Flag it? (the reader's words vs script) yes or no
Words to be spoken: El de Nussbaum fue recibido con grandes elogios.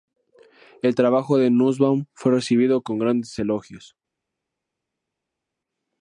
yes